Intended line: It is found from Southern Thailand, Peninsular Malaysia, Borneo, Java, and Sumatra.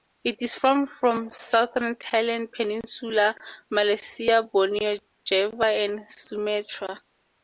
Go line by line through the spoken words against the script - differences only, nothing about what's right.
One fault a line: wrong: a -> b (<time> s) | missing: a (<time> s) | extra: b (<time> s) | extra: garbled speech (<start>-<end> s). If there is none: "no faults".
no faults